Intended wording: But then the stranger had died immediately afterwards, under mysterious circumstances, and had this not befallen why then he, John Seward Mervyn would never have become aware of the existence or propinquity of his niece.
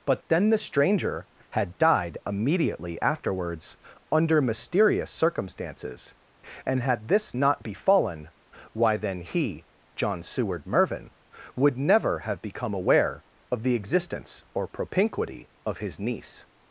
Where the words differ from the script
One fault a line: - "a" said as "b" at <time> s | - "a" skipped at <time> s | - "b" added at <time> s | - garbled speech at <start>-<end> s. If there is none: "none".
none